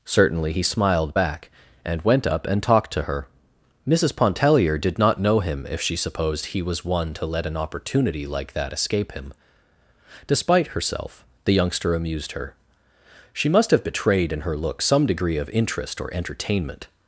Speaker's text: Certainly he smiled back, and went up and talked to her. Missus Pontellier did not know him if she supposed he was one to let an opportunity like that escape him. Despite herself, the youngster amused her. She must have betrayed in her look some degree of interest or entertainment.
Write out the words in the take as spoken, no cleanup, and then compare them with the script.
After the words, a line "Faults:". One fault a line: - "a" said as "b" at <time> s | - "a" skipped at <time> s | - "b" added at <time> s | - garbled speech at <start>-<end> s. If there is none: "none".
Certainly he smiled back, and went up and talked to her. Missus Pontellier did not know him if she supposed he was one to let an opportunity like that escape him. Despite herself, the youngster amused her. She must have betrayed in her look some degree of interest or entertainment.
Faults:
none